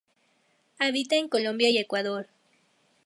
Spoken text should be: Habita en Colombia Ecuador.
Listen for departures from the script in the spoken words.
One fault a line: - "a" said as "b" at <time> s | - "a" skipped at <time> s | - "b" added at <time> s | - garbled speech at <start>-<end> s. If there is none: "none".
- "y" added at 1.7 s